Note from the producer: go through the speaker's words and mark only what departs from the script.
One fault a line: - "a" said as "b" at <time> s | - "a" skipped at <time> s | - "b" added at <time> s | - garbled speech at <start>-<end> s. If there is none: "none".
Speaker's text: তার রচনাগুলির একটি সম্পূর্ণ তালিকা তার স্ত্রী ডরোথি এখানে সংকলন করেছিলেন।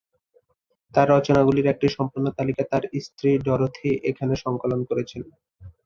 none